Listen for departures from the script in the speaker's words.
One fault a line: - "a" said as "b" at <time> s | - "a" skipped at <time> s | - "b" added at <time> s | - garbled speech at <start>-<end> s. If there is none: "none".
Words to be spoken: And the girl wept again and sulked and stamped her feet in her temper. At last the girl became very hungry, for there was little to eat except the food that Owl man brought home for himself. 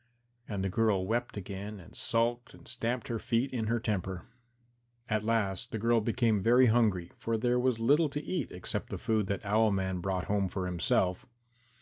none